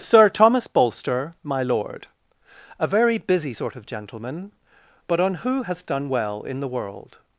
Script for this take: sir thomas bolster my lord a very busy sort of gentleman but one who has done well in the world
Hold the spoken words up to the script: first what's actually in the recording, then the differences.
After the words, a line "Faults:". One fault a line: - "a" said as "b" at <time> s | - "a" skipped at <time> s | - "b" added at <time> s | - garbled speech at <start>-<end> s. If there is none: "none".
sir thomas bolster my lord a very busy sort of gentleman but on who has done well in the world
Faults:
- "one" said as "on" at 5.2 s